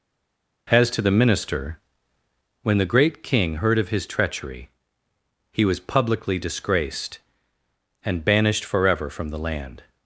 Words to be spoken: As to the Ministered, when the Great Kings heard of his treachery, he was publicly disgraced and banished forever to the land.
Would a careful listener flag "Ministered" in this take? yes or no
yes